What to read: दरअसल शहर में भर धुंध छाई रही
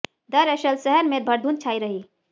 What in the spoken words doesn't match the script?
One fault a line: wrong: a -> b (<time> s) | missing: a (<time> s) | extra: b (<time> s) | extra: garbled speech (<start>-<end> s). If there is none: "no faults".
no faults